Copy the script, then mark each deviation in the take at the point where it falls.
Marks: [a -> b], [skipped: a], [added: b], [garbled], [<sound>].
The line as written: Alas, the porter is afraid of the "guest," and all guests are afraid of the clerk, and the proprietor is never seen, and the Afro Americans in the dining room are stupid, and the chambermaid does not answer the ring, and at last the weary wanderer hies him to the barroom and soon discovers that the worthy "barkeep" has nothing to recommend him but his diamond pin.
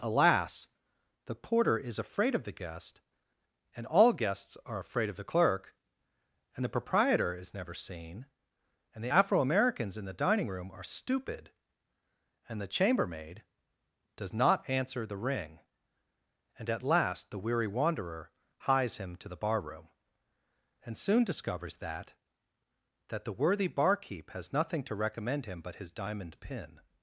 Alas, the porter is afraid of the "guest," and all guests are afraid of the clerk, and the proprietor is never seen, and the Afro Americans in the dining room are stupid, and the chambermaid does not answer the ring, and at last the weary wanderer hies him to the barroom and soon discovers that [added: that] the worthy "barkeep" has nothing to recommend him but his diamond pin.